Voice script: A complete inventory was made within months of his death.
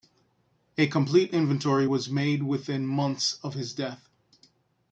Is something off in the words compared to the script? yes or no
no